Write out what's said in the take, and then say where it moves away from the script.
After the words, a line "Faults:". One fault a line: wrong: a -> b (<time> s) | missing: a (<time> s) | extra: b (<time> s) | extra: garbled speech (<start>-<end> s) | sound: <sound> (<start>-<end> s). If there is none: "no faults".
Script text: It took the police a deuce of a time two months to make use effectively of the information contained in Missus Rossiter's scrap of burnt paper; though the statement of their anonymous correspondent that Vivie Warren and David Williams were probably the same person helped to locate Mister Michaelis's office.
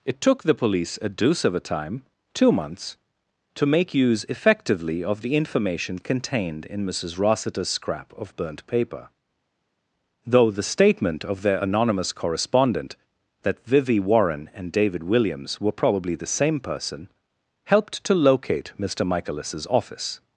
It took the police a deuce of a time two months to make use effectively of the information contained in Missus Rossiter's scrap of burnt paper; though the statement of their anonymous correspondent that Vivie Warren and David Williams were probably the same person helped to locate Mister Michaelis's office.
Faults:
no faults